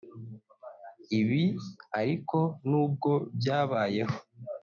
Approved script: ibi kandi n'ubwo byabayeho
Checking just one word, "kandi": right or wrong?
wrong